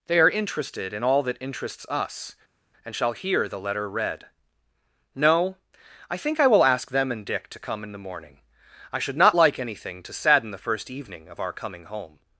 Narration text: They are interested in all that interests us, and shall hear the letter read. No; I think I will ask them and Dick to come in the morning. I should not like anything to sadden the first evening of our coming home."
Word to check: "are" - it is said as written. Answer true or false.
true